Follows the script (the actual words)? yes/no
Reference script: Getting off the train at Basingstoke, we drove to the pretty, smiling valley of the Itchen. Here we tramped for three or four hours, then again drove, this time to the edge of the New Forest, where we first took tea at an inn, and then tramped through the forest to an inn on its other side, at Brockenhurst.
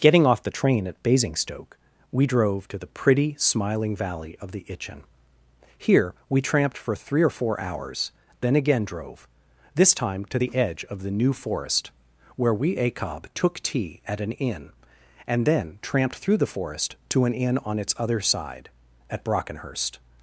no